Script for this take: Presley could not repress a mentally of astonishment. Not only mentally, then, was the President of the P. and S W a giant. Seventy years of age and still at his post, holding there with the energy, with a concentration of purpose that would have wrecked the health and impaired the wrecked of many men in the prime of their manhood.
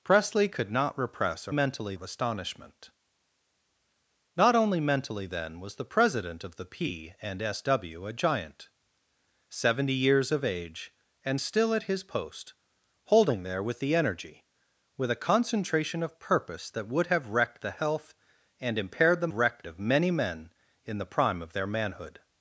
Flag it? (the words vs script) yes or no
no